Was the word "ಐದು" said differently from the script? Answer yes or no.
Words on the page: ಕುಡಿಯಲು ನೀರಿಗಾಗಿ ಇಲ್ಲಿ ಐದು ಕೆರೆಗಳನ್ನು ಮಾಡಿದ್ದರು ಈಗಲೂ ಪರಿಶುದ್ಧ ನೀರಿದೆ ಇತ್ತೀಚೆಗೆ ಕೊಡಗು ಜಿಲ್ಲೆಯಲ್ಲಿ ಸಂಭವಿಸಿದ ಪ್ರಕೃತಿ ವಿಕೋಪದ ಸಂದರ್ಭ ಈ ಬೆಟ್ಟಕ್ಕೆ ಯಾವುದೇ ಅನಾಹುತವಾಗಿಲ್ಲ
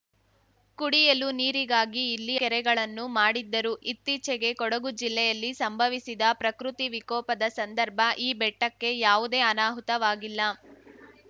yes